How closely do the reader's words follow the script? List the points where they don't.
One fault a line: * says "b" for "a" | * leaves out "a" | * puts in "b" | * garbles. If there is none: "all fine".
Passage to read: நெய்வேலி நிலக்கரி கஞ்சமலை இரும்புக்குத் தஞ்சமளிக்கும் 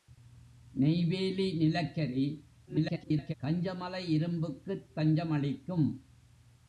* garbles